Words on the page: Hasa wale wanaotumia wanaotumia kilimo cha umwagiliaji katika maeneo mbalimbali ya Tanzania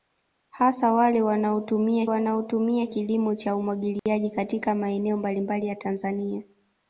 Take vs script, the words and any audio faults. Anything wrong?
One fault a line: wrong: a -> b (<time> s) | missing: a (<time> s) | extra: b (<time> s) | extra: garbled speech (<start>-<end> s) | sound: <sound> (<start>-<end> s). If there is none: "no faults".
sound: dropout (4.0-4.1 s)